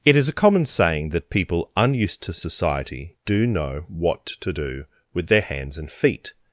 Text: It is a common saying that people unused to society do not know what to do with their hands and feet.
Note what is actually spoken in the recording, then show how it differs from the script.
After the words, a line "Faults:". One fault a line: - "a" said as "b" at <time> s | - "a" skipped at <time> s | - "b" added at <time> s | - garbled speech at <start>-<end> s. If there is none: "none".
It is a common saying that people unused to society do know what to do with their hands and feet.
Faults:
- "not" skipped at 3.5 s